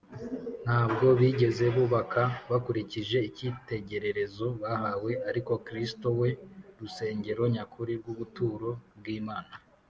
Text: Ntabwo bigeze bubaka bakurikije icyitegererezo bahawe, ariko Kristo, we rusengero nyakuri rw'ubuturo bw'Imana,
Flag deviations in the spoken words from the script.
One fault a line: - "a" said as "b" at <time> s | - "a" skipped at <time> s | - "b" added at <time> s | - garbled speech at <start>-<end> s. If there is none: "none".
none